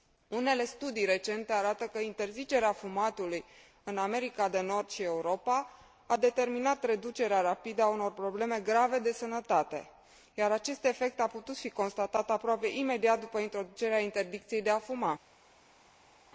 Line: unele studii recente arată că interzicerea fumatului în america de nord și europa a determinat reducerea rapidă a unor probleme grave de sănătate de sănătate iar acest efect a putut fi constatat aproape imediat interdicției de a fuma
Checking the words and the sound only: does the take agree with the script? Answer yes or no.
no